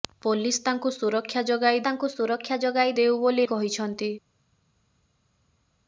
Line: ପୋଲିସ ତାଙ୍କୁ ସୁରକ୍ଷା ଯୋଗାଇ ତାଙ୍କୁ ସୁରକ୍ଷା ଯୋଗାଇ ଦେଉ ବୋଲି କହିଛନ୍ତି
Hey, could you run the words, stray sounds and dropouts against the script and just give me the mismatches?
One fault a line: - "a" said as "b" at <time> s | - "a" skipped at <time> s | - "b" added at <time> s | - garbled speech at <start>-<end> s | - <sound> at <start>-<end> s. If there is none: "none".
none